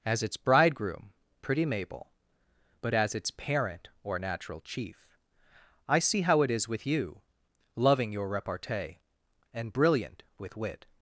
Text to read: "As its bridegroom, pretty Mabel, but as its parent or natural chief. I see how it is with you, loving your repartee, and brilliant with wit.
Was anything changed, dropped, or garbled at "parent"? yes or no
no